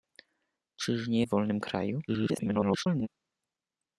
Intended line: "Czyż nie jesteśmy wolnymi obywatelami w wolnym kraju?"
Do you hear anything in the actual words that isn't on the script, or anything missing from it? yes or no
yes